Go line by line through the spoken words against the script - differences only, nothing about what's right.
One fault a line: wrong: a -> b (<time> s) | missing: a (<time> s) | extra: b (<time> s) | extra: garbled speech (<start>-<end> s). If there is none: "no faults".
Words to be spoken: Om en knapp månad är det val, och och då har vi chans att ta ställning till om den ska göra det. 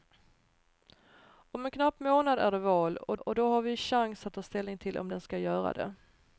no faults